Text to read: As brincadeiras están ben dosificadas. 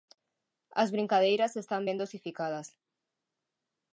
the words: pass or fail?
pass